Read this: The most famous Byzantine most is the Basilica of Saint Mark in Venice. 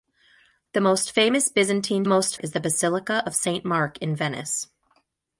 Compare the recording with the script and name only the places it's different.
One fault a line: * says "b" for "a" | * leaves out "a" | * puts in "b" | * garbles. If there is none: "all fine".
all fine